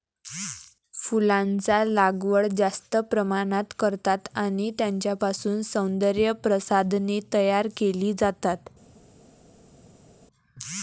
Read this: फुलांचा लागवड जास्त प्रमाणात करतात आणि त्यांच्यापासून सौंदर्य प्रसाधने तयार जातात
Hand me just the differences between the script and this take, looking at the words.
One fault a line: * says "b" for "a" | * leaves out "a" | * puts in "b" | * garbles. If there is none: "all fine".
* puts in "केली"